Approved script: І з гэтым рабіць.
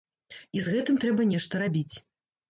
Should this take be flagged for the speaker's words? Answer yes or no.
yes